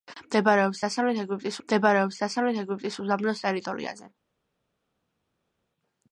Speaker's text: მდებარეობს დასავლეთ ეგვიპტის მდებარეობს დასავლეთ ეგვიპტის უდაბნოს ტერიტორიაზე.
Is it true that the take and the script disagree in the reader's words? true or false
false